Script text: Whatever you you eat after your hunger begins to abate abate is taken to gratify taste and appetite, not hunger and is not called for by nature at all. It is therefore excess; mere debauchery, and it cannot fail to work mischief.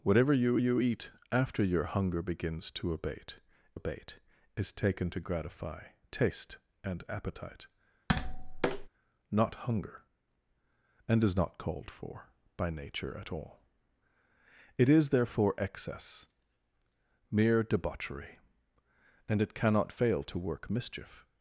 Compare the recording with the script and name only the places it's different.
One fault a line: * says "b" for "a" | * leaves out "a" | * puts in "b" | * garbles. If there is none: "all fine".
all fine